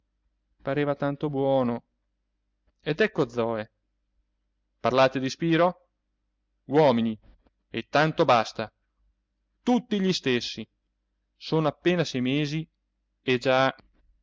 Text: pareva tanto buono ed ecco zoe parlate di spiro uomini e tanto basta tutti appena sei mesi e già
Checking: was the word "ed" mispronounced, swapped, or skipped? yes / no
no